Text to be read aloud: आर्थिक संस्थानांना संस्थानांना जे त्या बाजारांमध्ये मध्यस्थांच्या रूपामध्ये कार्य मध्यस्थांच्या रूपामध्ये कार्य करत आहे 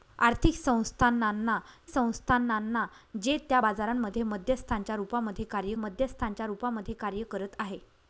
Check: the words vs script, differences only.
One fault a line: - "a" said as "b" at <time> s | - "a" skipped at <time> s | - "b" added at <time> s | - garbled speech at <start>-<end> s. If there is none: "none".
none